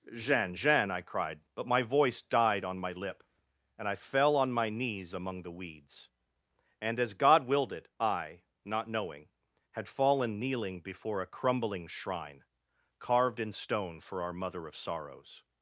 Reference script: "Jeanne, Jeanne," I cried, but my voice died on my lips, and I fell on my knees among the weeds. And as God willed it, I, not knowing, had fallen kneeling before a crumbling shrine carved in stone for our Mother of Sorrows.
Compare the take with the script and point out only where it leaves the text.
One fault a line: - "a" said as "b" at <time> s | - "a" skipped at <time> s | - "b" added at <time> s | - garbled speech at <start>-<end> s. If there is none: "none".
- "lips" said as "lip" at 2.9 s